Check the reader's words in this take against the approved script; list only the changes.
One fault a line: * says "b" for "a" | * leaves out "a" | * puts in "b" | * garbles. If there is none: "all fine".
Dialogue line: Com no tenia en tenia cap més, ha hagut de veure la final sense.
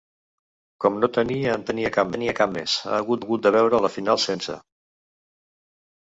* puts in "tenia cap"
* puts in "hagut"